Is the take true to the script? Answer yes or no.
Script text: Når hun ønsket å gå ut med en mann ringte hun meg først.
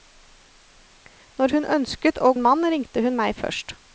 no